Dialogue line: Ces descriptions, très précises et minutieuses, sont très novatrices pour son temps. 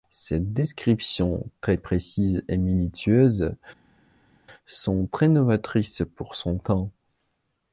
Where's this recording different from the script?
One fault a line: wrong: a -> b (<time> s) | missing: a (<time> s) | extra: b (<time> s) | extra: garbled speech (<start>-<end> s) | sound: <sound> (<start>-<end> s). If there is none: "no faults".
no faults